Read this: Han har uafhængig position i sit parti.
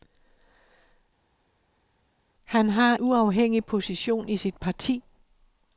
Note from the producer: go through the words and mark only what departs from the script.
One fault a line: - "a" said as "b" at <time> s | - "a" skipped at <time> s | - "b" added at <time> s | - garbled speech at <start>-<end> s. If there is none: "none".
none